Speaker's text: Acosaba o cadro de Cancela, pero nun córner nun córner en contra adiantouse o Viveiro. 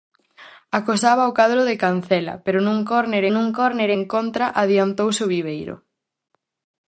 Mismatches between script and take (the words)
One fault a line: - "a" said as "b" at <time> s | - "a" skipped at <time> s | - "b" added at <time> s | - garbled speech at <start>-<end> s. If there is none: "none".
none